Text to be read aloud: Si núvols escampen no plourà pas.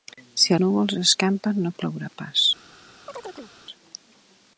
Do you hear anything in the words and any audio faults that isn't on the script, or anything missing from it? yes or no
yes